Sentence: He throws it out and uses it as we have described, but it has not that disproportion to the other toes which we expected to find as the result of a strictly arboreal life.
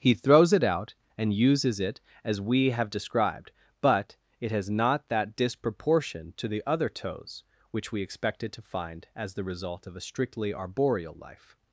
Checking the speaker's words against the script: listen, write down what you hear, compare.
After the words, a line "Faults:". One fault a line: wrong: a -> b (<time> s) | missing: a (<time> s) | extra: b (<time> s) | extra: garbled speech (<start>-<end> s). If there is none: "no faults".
He throws it out and uses it as we have described, but it has not that disproportion to the other toes which we expected to find as the result of a strictly arboreal life.
Faults:
no faults